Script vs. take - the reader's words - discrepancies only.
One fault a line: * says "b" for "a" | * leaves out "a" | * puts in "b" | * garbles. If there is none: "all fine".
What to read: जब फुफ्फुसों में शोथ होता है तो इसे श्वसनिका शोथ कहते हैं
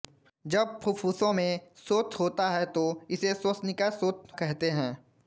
all fine